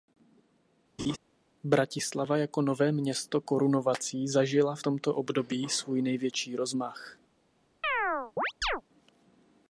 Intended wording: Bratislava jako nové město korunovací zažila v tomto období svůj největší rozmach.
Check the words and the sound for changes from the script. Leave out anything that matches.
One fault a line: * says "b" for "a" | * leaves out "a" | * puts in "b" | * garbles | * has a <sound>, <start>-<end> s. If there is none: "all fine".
* has a laugh, 1.0-1.2 s
* has a chirp, 7.8-8.8 s